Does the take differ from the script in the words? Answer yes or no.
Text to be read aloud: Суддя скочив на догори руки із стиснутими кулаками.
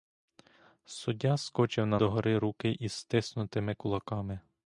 no